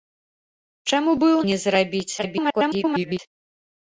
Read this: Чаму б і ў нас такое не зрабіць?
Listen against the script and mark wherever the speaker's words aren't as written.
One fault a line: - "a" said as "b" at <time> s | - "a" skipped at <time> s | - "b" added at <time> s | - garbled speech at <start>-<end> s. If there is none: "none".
- "нас такое" skipped at 1.4 s
- garbled speech at 2.2-3.2 s